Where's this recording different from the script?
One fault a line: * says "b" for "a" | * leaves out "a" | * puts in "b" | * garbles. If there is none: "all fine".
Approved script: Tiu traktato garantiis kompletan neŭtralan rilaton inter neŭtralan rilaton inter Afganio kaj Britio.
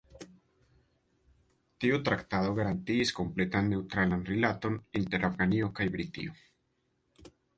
* leaves out "neŭtralan rilaton inter"